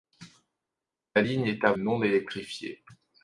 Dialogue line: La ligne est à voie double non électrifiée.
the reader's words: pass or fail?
fail